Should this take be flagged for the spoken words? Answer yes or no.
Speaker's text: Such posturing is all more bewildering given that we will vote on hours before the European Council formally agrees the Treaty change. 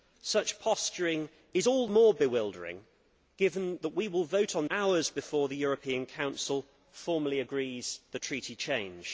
no